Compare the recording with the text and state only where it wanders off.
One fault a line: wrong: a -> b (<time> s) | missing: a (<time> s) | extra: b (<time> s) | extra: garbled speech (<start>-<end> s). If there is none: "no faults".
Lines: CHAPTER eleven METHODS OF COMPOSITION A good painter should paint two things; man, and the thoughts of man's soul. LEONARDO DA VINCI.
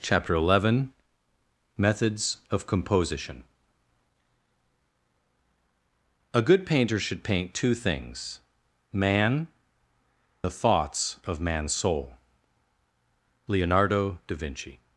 missing: and (9.4 s)